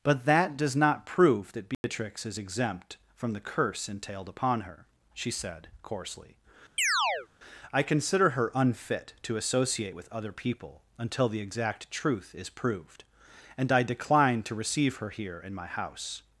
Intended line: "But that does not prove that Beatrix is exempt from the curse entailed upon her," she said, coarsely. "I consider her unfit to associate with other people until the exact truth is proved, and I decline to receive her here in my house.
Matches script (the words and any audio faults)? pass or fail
fail